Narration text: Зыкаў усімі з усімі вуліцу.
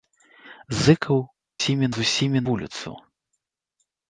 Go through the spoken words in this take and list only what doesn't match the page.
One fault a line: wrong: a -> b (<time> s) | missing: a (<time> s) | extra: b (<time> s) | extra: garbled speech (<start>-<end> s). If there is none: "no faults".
no faults